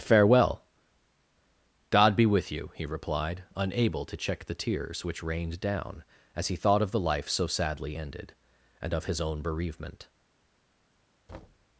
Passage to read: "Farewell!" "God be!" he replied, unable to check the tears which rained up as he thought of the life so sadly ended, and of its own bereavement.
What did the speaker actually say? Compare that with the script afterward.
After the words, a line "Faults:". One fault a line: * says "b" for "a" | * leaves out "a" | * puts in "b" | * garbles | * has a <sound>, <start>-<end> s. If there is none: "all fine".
"Farewell!" "God be with you!" he replied, unable to check the tears which rained down as he thought of the life so sadly ended, and of his own bereavement.
Faults:
* puts in "with you"
* says "down" for "up"
* says "his" for "its"
* has a thud, 11.3-11.7 s